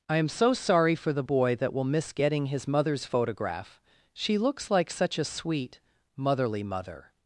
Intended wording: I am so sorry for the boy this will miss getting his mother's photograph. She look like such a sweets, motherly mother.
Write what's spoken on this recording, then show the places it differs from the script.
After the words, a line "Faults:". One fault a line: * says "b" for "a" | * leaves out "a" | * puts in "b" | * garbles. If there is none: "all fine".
I am so sorry for the boy that will miss getting his mother's photograph. She looks like such a sweet, motherly mother.
Faults:
* says "that" for "this"
* says "looks" for "look"
* says "sweet" for "sweets"